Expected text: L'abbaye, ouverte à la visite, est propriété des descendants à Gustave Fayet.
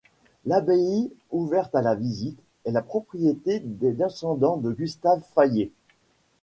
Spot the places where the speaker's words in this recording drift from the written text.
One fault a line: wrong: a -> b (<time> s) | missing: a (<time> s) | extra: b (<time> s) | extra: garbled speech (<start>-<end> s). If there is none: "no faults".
extra: la (2.7 s)
wrong: à -> de (4.6 s)